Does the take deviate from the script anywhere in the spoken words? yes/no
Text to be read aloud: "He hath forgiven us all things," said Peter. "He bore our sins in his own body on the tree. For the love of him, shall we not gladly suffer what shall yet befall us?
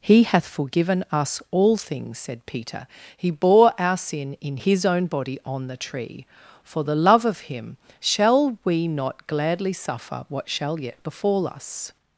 yes